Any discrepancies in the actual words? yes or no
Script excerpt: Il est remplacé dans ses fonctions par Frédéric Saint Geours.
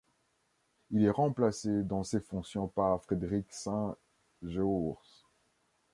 no